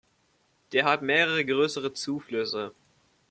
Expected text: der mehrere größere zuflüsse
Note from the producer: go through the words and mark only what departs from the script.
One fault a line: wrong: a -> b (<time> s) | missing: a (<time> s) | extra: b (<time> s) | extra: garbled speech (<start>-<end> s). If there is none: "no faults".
extra: hat (0.8 s)